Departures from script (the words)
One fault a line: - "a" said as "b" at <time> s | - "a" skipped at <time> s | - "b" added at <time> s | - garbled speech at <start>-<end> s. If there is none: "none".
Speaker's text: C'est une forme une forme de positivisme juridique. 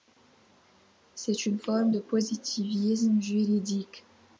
- "une forme" skipped at 1.9 s